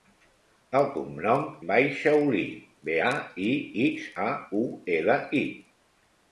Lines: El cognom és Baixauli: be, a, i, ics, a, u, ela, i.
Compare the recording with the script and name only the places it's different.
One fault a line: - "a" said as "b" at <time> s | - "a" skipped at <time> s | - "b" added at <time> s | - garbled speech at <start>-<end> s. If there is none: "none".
- "és" skipped at 1.4 s